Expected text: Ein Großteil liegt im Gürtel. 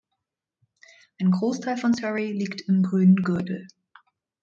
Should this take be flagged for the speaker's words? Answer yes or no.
yes